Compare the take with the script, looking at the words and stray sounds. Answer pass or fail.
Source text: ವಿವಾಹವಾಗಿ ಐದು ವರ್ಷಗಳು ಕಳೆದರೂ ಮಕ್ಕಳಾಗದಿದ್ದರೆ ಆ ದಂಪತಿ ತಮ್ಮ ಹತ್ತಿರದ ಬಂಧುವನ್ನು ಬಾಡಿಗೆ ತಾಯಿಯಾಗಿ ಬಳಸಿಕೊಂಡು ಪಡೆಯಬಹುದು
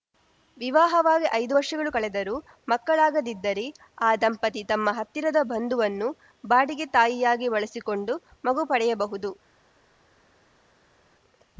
fail